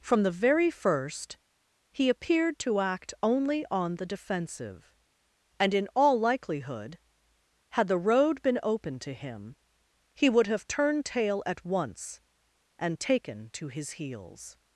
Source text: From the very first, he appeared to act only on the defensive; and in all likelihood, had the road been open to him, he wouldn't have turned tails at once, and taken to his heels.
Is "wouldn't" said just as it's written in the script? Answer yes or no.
no